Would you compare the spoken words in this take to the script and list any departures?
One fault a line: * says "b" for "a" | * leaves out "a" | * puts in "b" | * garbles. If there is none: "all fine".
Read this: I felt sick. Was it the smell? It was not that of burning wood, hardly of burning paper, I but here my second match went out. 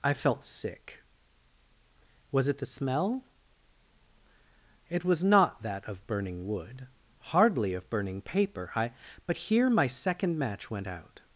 all fine